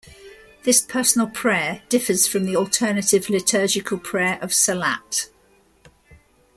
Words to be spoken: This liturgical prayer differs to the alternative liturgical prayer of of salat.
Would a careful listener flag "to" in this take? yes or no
yes